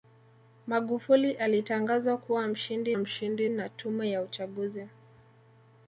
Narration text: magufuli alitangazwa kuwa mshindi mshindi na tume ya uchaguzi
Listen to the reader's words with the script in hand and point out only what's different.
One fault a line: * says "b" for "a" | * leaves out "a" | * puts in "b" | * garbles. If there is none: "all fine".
all fine